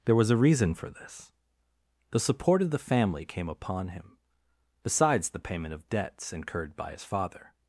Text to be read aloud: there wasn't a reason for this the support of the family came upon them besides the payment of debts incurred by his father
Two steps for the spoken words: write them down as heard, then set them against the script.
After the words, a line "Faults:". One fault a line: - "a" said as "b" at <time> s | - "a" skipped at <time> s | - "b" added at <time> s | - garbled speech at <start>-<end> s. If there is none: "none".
there was a reason for this the support of the family came upon him besides the payment of debts incurred by his father
Faults:
- "wasn't" said as "was" at 0.1 s
- "them" said as "him" at 3.9 s